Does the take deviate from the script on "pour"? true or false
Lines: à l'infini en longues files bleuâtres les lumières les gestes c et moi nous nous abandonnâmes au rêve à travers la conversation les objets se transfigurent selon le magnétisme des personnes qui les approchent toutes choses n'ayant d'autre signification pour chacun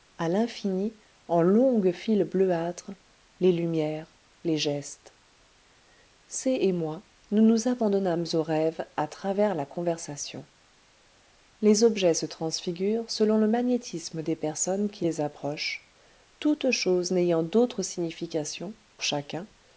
true